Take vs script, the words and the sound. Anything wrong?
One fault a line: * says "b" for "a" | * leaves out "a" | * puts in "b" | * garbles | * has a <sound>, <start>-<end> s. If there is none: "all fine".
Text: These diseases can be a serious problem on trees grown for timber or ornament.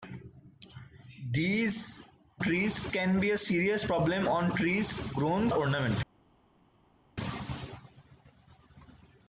* says "trees" for "diseases"
* leaves out "for timber or"